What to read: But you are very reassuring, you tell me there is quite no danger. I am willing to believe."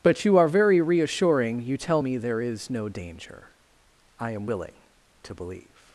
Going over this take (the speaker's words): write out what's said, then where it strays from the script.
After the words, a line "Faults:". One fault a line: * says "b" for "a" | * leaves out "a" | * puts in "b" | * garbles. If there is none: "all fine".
But you are very reassuring, you tell me there is no danger. I am willing to believe."
Faults:
* leaves out "quite"